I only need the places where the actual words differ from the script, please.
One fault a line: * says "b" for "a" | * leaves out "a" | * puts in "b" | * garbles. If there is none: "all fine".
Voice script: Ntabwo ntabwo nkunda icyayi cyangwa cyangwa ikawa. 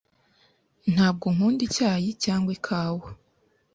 * leaves out "ntabwo"
* leaves out "cyangwa"